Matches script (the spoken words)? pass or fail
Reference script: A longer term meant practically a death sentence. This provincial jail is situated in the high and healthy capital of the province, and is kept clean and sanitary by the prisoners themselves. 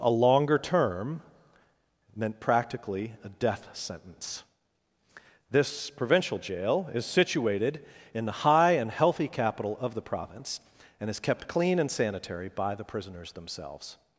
pass